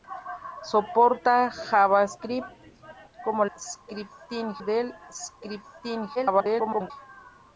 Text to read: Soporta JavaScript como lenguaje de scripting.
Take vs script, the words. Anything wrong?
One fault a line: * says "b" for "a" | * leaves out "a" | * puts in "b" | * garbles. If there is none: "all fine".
* says "scripting" for "lenguaje"
* garbles